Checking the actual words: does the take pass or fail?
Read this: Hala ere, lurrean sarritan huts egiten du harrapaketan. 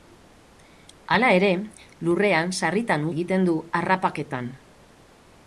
fail